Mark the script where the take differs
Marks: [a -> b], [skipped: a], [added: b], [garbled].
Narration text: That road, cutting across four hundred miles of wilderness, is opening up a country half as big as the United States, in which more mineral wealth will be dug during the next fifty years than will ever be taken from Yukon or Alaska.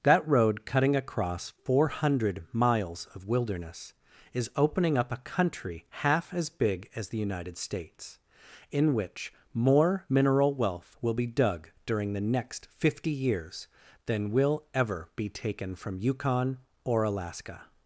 That road, cutting across four hundred miles of wilderness, is opening up a country half as big as the United States, in which more mineral wealth will be dug during the next fifty years than will ever be taken from Yukon or Alaska.